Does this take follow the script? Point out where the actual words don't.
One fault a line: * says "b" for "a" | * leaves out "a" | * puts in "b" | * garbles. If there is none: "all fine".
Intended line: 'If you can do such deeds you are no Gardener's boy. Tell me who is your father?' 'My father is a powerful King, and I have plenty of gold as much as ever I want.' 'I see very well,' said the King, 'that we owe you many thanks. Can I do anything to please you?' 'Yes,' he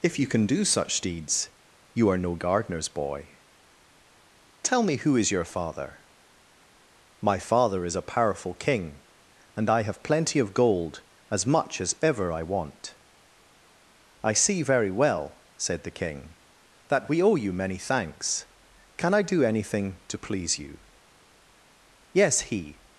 all fine